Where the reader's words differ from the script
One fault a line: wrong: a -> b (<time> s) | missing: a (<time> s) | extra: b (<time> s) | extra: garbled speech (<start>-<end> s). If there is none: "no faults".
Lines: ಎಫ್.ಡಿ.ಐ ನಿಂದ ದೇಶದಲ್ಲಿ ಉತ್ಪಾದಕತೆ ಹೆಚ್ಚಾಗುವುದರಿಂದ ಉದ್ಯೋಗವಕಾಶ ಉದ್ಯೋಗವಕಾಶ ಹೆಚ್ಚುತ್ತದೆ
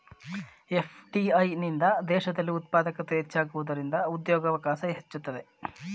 missing: ಉದ್ಯೋಗವಕಾಶ (4.8 s)